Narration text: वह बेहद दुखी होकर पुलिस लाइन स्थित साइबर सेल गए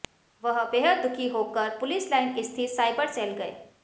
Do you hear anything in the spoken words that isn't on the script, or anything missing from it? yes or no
no